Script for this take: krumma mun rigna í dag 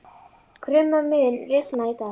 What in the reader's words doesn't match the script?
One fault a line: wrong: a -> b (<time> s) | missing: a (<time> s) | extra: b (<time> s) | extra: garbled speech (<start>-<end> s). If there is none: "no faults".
no faults